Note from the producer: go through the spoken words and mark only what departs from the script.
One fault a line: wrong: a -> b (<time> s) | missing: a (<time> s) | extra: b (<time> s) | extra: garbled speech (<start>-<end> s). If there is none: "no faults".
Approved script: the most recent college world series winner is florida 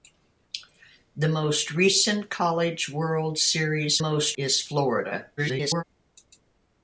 wrong: winner -> most (4.0 s)
extra: garbled speech (5.4-5.8 s)